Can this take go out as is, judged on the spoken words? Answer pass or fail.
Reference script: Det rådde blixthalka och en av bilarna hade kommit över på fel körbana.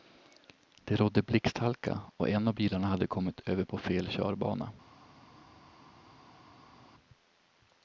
pass